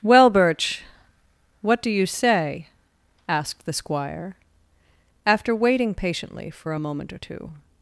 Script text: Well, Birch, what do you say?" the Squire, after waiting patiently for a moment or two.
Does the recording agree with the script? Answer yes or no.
no